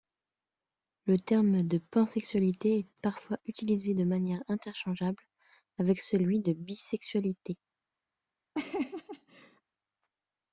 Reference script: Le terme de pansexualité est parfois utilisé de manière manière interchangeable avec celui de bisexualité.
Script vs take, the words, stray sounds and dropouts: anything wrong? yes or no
yes